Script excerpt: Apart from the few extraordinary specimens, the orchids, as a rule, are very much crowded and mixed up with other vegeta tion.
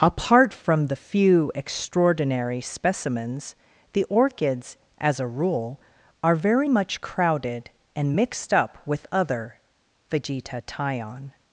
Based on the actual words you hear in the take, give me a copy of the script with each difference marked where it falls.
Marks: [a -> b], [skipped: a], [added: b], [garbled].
Apart from the few extraordinary specimens, the orchids, as a rule, are very much crowded and mixed up with other vegeta tion.